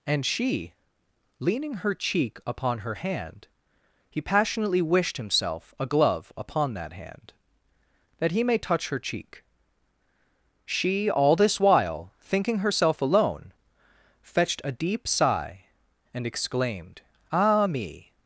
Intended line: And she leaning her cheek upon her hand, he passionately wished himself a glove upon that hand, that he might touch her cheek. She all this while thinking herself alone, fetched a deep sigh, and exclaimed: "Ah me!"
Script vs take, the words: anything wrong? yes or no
yes